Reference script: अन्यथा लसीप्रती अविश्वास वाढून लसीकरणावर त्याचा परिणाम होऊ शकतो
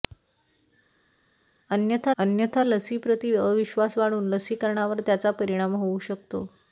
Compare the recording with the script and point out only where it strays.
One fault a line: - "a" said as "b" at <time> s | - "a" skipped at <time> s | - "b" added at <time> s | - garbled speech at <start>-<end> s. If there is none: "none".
- "अन्यथा" added at 2.2 s